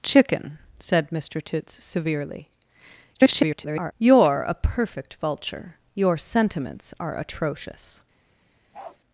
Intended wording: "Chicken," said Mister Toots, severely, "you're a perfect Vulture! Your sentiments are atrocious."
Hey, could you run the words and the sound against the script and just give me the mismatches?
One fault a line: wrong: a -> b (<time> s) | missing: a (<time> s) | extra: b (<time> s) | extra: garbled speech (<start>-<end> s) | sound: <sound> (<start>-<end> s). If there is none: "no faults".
extra: garbled speech (3.1-3.9 s)
sound: bark (8.7-9.0 s)